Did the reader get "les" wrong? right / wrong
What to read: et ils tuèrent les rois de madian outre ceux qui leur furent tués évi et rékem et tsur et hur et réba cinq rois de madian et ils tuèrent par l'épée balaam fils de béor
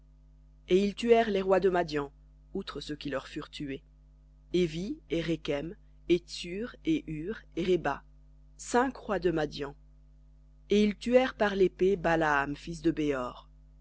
right